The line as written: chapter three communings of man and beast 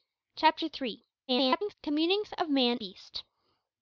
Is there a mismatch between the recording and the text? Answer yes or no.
yes